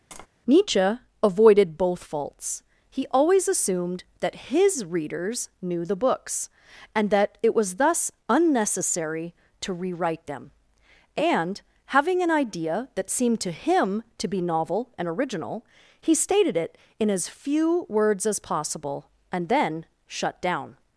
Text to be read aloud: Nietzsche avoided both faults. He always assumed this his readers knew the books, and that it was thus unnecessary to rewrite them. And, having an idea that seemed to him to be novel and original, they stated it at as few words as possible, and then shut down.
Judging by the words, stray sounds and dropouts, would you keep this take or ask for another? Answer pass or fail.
fail